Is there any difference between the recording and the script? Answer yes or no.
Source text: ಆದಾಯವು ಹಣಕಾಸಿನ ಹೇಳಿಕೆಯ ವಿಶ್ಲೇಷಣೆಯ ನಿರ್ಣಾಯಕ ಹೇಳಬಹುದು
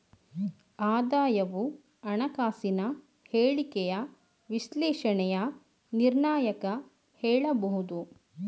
no